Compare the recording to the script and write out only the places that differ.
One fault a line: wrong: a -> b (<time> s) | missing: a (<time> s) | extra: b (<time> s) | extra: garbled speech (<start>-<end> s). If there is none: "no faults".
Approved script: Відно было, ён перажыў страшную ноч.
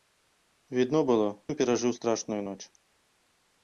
no faults